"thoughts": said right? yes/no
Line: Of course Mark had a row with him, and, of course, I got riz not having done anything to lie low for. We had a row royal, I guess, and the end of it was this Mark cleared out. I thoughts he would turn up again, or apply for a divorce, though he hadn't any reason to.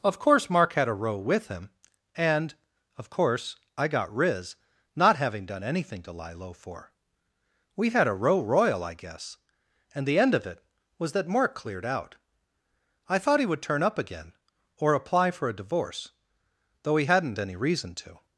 no